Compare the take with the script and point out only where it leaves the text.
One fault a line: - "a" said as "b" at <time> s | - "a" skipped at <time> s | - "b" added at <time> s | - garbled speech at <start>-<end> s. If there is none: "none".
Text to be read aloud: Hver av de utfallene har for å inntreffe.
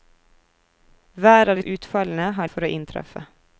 none